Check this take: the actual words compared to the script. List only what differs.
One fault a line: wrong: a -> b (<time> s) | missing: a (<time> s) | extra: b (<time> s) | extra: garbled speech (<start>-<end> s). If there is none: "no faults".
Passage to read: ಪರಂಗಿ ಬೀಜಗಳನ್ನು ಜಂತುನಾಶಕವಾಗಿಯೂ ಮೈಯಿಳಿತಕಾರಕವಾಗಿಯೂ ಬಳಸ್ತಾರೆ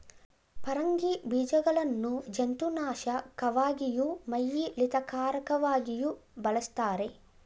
no faults